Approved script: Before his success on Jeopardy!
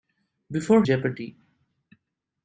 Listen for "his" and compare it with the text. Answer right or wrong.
wrong